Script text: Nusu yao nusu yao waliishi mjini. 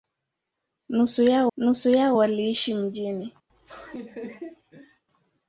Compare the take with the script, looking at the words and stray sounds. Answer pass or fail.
fail